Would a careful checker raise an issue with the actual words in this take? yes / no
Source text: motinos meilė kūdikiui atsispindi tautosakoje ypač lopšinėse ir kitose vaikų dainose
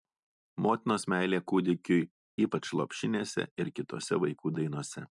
yes